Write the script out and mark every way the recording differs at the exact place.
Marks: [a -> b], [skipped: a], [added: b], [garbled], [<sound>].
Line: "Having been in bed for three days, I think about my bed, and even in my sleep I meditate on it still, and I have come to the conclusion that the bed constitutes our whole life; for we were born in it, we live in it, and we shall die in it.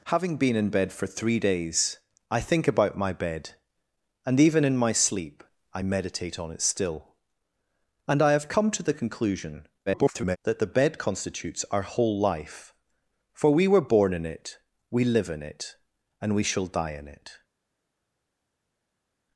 "Having been in bed for three days, I think about my bed, and even in my sleep I meditate on it still, and I have come to the conclusion [garbled] that the bed constitutes our whole life; for we were born in it, we live in it, and we shall die in it.